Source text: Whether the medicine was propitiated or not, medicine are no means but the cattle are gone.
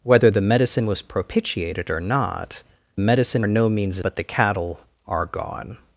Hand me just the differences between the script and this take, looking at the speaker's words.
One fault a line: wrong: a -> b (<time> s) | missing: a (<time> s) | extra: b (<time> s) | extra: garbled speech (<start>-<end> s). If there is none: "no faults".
no faults